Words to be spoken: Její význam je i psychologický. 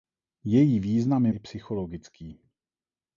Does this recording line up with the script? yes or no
yes